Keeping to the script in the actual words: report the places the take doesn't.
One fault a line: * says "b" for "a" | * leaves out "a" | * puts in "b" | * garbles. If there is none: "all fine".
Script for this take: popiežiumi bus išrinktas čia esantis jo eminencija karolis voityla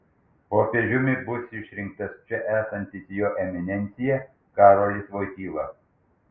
all fine